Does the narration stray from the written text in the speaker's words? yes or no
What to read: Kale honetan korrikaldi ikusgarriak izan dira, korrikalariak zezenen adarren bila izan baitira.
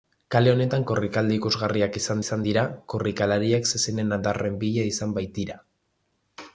yes